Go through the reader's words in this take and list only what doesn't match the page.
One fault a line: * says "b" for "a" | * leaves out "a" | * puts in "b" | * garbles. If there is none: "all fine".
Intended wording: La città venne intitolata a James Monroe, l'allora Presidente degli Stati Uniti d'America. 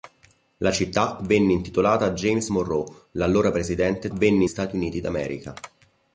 * says "venne" for "degli"